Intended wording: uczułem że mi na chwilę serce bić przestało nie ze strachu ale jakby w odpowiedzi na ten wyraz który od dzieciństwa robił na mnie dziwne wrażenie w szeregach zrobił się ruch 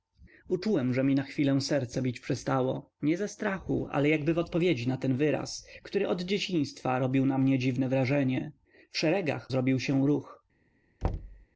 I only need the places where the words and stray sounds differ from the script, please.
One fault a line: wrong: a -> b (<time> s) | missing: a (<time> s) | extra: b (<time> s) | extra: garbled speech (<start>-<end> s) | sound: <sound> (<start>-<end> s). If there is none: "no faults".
sound: thud (11.0-11.5 s)